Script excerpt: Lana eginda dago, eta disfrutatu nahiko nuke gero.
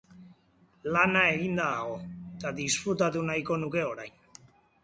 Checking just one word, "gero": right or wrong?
wrong